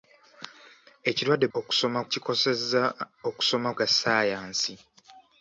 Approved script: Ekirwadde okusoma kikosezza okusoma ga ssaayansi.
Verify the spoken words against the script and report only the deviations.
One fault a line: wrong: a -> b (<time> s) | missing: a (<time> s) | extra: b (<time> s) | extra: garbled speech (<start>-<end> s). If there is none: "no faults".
no faults